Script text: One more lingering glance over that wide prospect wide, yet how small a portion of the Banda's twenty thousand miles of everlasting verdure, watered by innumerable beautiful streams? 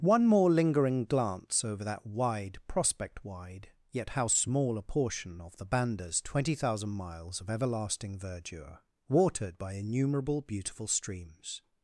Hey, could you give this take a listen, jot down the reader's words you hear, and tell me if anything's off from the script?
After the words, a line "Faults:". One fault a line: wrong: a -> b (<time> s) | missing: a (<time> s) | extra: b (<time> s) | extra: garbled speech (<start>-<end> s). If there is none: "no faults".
One more lingering glance over that wide prospect wide, yet how small a portion of the Banda's twenty thousand miles of everlasting verdure, watered by innumerable beautiful streams?
Faults:
no faults